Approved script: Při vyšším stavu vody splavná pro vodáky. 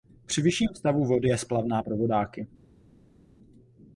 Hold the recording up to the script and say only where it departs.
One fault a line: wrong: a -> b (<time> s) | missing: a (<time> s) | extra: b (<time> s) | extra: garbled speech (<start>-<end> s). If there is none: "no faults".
extra: je (1.3 s)